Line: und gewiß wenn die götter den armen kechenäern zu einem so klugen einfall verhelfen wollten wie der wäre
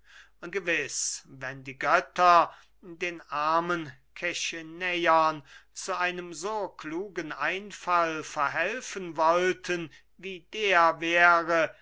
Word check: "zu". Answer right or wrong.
right